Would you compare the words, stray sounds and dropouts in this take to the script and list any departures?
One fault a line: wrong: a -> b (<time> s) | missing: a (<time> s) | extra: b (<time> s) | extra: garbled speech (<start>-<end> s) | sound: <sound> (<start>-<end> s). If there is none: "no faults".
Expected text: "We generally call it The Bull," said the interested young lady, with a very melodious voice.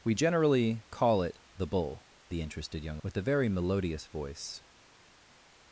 missing: said (2.1 s)
missing: lady (3.0 s)